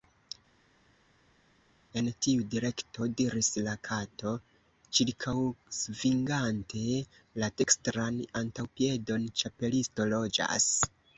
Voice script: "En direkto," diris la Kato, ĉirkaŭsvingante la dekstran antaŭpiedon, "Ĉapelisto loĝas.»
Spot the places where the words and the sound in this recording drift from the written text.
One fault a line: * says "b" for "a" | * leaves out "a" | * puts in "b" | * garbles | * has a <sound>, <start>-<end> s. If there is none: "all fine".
* puts in "tiu"